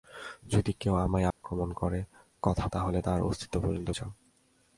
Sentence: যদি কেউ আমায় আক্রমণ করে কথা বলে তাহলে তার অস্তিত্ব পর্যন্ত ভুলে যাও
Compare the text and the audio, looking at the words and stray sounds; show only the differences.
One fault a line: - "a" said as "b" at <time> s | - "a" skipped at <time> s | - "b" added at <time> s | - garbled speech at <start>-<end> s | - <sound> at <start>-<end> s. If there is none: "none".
- dropout at 1.3-1.4 s
- "বলে" skipped at 2.7 s
- "ভুলে" skipped at 3.9 s